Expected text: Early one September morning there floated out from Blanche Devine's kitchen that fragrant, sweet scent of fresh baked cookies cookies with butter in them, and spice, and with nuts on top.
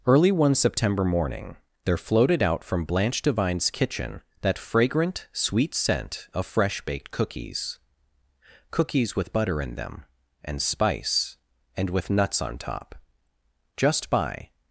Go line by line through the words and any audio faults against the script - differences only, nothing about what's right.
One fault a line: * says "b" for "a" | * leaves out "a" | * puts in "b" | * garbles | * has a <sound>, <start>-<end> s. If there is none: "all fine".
* puts in "Just by"